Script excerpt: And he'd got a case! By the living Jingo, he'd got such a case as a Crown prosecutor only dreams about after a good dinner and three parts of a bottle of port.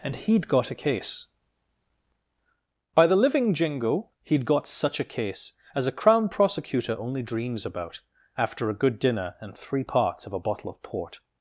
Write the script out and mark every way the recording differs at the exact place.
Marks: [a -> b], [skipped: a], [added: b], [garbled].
And he'd got a case! By the living Jingo, he'd got such a case as a Crown prosecutor only dreams about after a good dinner and three parts of a bottle of port.